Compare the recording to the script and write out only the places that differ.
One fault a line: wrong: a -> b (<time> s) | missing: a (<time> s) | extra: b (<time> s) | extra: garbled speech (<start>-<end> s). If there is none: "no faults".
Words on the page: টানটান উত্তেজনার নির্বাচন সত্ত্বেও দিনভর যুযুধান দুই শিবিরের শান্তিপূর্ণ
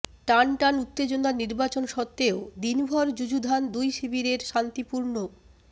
no faults